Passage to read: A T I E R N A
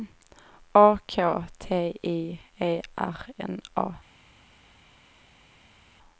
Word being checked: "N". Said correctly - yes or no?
yes